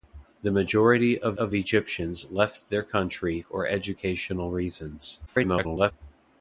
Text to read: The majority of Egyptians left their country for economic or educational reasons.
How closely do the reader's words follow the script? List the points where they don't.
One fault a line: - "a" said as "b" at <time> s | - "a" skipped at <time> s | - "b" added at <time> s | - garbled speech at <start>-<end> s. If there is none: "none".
- "of" added at 1.4 s
- "for economic" skipped at 3.4 s
- garbled speech at 5.3-5.9 s